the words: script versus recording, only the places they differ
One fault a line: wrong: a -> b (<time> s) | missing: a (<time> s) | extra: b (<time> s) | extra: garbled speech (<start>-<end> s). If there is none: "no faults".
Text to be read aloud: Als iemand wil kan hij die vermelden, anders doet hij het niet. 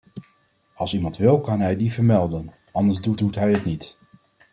extra: doet (3.1 s)